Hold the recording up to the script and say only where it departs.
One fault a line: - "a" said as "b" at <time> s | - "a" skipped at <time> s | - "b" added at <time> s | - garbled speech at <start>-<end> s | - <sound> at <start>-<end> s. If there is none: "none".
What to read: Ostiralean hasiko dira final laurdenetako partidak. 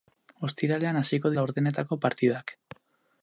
- "dira final" skipped at 1.3 s